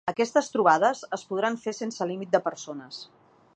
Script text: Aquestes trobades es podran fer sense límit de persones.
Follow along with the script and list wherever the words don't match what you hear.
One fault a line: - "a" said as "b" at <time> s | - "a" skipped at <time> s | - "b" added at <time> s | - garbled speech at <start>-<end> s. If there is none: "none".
none